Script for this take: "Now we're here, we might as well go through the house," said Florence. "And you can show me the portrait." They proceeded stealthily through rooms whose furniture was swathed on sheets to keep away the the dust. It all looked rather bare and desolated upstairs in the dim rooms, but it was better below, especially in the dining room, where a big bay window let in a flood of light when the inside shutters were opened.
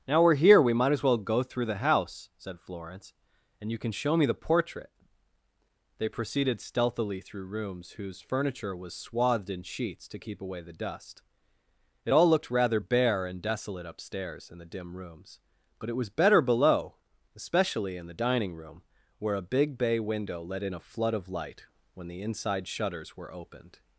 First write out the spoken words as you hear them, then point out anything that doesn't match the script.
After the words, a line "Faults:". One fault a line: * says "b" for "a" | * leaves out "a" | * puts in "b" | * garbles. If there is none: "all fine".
"Now we're here, we might as well go through the house," said Florence. "And you can show me the portrait." They proceeded stealthily through rooms whose furniture was swathed in sheets to keep away the dust. It all looked rather bare and desolate upstairs in the dim rooms, but it was better below, especially in the dining room, where a big bay window let in a flood of light when the inside shutters were opened.
Faults:
* says "in" for "on"
* leaves out "the"
* says "desolate" for "desolated"